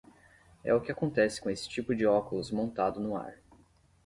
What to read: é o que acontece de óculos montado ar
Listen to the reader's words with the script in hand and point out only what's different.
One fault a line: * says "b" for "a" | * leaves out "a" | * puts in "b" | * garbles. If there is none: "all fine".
* puts in "com esse tipo"
* puts in "no"